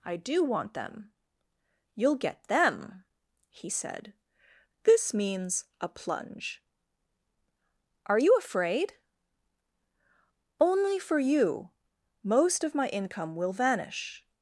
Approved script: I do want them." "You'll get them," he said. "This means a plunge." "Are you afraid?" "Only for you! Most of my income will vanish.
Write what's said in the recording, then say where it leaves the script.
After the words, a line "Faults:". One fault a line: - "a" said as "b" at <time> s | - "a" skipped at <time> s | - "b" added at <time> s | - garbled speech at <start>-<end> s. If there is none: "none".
I do want them." "You'll get them," he said. "This means a plunge." "Are you afraid?" "Only for you! Most of my income will vanish.
Faults:
none